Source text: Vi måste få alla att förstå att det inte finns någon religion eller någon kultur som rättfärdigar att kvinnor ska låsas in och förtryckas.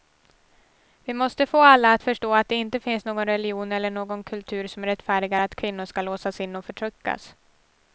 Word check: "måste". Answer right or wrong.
right